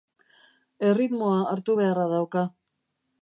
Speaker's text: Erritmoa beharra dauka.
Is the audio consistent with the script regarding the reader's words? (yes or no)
no